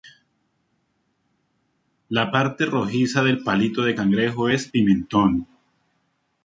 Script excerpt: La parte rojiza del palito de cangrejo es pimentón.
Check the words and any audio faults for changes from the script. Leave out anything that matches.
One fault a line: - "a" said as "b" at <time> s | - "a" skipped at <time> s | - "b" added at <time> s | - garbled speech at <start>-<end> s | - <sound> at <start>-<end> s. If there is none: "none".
none